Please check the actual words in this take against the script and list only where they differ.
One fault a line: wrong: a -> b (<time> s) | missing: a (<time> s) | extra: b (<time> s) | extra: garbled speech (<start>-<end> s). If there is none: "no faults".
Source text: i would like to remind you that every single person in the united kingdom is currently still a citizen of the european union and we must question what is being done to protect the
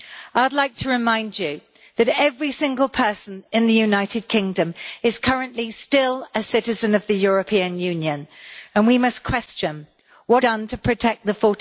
missing: is being (10.4 s)